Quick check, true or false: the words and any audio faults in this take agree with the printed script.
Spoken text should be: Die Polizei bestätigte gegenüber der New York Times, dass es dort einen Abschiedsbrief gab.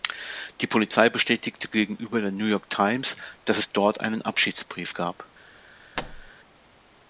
false